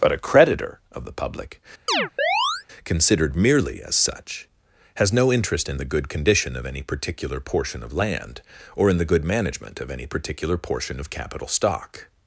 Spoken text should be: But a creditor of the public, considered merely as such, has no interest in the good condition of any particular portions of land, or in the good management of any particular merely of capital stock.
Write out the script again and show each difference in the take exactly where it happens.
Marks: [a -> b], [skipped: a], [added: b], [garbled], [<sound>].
But a creditor of the public, [chirp] considered merely as such, has no interest in the good condition of any particular [portions -> portion] of land, or in the good management of any particular [merely -> portion] of capital stock.